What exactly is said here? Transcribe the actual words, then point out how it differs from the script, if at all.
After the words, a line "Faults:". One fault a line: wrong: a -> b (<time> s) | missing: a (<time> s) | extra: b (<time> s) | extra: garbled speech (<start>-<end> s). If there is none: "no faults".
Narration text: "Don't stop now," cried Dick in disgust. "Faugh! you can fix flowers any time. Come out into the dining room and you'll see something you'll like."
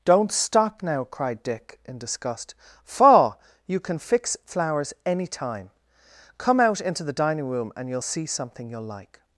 "Don't stop now," cried Dick in disgust. "Faugh! you can fix flowers any time. Come out into the dining room and you'll see something you'll like."
Faults:
no faults